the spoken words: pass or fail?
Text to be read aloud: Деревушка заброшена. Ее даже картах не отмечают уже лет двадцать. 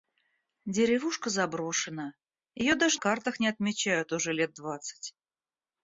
pass